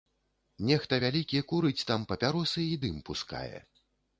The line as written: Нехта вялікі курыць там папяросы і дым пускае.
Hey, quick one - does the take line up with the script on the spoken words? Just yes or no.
yes